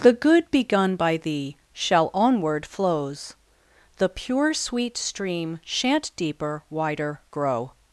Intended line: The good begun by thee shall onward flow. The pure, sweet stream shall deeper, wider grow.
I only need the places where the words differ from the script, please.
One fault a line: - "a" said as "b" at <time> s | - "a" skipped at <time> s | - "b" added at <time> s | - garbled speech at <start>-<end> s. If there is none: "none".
- "flow" said as "flows" at 2.6 s
- "shall" said as "shan't" at 5.6 s